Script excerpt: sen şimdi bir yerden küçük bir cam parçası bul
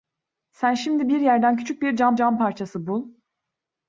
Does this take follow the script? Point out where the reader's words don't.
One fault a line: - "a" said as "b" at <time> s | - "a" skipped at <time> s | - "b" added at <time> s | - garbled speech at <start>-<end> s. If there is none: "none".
- "cam" added at 2.1 s